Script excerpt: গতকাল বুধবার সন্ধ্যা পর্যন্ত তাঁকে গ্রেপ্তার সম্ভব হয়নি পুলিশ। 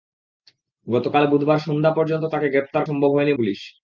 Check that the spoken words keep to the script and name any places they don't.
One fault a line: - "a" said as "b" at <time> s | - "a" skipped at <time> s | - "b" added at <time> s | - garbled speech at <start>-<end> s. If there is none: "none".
none